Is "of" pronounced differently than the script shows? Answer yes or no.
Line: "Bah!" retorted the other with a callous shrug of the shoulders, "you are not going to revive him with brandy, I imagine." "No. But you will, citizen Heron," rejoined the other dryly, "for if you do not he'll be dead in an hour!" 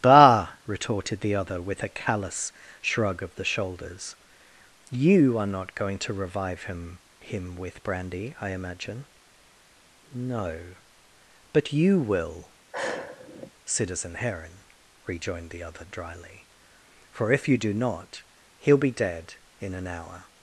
no